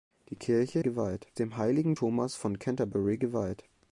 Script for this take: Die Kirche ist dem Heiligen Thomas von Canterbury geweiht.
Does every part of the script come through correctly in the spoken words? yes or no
no